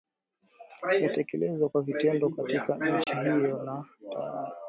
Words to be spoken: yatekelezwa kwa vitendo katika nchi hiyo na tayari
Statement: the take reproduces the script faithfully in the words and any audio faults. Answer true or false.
false